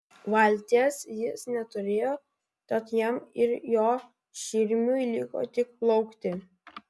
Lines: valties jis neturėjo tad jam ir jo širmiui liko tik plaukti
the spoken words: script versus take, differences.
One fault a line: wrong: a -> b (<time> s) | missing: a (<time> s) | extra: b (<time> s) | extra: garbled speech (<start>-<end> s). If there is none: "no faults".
no faults